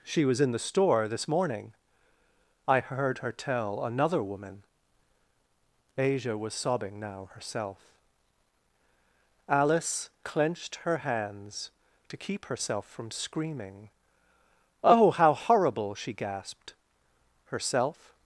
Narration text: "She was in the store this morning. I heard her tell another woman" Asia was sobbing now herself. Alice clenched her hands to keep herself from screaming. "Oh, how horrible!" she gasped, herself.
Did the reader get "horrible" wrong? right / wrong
right